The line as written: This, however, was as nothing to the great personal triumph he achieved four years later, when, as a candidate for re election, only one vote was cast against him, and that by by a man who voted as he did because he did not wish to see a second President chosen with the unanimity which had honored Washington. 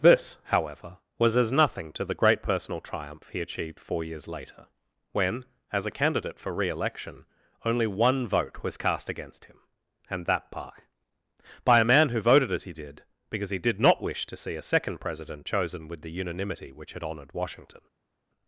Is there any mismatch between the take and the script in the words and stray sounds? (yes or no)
no